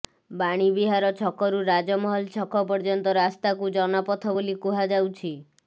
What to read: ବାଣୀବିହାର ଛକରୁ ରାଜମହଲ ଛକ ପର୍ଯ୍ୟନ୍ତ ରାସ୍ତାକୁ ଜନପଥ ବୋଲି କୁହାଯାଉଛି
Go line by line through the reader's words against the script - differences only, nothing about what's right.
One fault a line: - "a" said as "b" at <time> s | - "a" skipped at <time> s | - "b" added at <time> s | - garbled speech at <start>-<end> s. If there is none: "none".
none